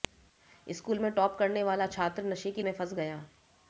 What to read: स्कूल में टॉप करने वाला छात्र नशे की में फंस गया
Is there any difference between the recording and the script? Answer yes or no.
no